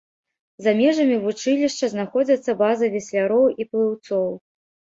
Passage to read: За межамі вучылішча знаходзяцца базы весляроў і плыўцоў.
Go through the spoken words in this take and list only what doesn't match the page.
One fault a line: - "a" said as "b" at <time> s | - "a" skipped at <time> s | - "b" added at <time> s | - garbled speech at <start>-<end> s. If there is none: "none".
none